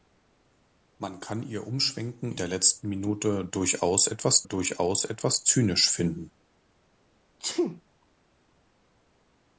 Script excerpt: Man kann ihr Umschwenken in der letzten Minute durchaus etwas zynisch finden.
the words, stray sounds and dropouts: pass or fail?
fail